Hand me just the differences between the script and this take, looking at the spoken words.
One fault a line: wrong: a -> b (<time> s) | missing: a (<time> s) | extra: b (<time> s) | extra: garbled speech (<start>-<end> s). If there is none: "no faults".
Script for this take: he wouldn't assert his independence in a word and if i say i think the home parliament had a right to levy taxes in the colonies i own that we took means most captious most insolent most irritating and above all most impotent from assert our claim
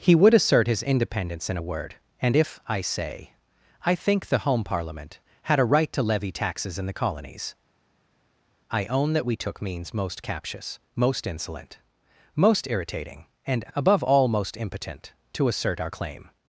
wrong: wouldn't -> would (0.1 s)
wrong: from -> to (15.3 s)